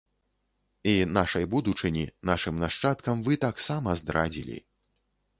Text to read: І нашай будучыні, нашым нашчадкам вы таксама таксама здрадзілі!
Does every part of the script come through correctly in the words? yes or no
no